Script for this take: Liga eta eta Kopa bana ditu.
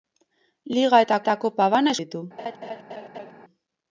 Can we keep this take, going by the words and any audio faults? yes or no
no